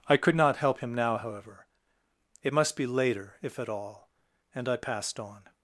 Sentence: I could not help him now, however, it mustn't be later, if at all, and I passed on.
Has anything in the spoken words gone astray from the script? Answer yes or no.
yes